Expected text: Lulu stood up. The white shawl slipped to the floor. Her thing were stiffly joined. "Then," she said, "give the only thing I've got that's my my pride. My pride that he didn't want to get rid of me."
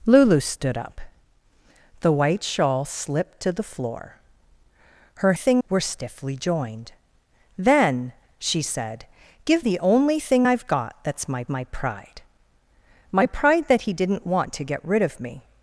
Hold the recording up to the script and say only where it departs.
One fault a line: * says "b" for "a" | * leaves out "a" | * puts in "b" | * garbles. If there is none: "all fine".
all fine